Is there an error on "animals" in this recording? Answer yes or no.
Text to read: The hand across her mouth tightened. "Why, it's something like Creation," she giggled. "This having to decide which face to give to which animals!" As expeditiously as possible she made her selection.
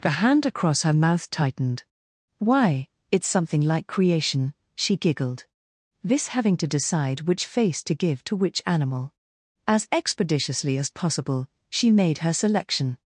yes